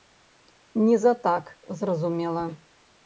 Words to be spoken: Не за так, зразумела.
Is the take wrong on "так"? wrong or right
right